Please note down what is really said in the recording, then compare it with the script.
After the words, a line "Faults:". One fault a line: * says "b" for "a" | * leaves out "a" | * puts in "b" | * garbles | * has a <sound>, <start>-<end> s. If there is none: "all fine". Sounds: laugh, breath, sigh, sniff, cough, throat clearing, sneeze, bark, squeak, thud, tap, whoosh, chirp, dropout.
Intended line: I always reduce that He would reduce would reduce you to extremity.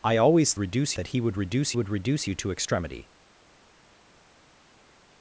I always reduce that He would reduce would reduce you to extremity.
Faults:
all fine